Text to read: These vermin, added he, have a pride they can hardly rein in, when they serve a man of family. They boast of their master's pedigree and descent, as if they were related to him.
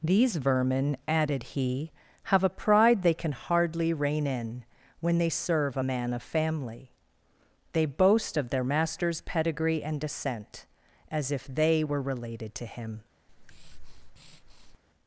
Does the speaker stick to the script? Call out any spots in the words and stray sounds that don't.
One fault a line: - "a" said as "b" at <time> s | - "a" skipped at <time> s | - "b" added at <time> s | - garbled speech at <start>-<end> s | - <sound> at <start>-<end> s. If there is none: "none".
- breath at 13.3-14.8 s